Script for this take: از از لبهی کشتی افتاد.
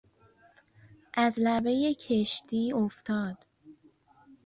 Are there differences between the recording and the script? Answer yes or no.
yes